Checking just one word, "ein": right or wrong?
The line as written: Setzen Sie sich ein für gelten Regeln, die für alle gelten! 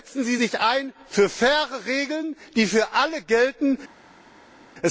right